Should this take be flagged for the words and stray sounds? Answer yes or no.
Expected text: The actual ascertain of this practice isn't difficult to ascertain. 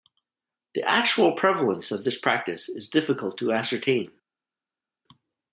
yes